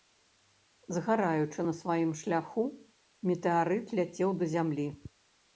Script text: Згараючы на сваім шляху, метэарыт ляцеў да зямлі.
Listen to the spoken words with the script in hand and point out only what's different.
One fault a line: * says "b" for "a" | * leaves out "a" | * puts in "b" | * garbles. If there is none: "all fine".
all fine